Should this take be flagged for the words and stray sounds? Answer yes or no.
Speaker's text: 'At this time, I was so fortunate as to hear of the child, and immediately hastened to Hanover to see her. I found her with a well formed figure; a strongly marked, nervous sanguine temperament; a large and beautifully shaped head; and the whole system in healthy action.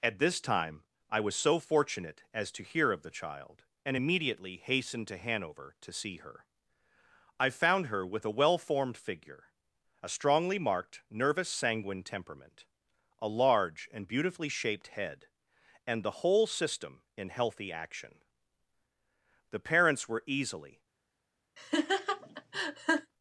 yes